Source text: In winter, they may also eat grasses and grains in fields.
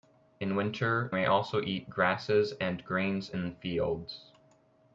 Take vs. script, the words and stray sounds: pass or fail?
fail